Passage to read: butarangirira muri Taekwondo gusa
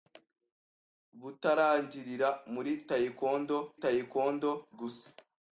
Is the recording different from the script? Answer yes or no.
yes